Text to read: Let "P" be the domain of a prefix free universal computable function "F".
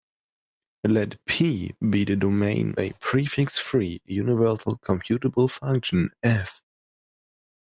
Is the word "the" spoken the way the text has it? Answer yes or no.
yes